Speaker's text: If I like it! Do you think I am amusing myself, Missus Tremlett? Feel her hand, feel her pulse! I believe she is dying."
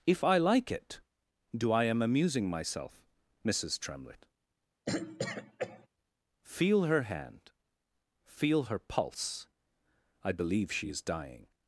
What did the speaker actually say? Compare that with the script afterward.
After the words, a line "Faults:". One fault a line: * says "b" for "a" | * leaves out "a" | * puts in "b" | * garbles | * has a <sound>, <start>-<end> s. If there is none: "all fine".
If I like it! Do I am amusing myself, Missus Tremlett? Feel her hand, feel her pulse! I believe she is dying."
Faults:
* leaves out "you think"
* has a throat clearing, 4.9-5.9 s